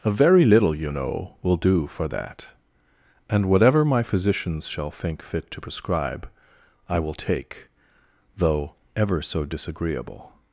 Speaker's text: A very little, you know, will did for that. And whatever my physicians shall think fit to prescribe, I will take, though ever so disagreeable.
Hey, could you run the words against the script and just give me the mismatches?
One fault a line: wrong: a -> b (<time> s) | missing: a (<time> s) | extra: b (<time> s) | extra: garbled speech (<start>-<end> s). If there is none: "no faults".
wrong: did -> do (1.6 s)